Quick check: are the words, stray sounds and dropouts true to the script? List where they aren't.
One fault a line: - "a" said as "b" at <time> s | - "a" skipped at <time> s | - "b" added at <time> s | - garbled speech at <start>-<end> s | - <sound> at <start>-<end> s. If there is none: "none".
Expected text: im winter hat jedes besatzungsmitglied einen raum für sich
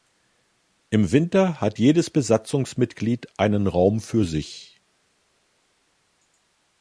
none